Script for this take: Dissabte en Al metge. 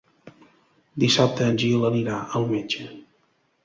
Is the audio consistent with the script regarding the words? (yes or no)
no